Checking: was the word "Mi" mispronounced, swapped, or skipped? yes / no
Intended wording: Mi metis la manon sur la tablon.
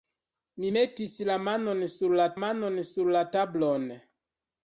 no